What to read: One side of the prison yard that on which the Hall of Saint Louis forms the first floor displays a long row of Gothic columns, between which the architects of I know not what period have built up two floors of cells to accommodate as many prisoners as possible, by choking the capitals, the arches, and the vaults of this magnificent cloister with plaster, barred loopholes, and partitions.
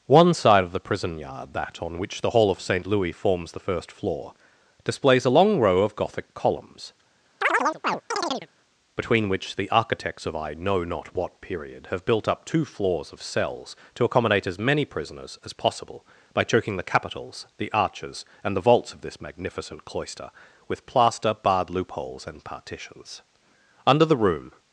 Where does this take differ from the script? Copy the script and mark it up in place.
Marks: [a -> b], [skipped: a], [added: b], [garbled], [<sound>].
One side of the prison yard that on which the Hall of Saint Louis forms the first floor displays a long row of Gothic columns, [chirp] between which the architects of I know not what period have built up two floors of cells to accommodate as many prisoners as possible, by choking the capitals, the arches, and the vaults of this magnificent cloister with plaster, barred loopholes, and partitions. [added: Under the room]